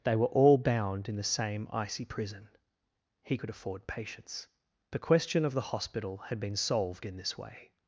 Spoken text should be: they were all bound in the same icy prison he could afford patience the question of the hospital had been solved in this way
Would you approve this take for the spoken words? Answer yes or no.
yes